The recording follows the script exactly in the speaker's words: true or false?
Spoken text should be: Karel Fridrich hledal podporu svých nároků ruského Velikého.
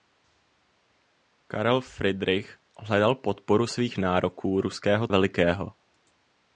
true